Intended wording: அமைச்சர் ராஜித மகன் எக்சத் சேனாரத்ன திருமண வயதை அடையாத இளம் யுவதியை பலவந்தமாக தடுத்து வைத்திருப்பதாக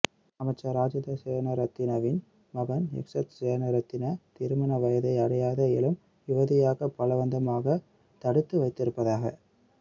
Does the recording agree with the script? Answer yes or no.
no